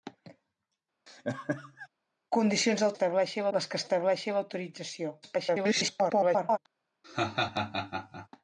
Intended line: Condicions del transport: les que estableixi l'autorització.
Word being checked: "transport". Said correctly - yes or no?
no